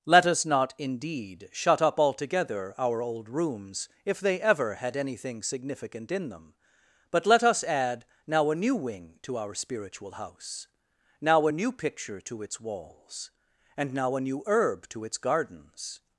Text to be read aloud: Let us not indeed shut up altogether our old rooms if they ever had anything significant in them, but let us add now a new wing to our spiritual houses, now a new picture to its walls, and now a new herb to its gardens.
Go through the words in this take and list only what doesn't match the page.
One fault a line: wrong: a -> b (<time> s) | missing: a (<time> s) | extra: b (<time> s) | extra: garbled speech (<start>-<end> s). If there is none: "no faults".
wrong: houses -> house (10.1 s)